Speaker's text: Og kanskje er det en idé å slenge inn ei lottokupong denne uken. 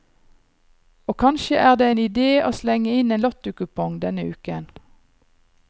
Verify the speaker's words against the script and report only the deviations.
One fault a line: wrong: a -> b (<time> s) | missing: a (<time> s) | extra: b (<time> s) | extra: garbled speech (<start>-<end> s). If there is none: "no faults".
wrong: ei -> en (3.2 s)